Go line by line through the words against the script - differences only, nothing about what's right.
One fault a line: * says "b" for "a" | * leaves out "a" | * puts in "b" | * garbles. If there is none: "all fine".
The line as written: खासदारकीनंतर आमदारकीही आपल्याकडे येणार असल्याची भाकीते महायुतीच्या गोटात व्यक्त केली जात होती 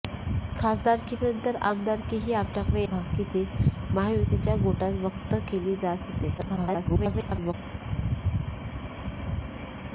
* leaves out "येणार असल्याची"
* garbles